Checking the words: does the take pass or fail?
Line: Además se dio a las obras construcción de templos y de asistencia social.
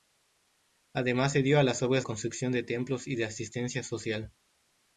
pass